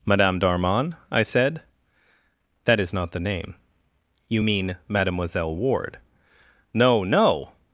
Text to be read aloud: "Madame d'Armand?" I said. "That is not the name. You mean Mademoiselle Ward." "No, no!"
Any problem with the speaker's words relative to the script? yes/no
no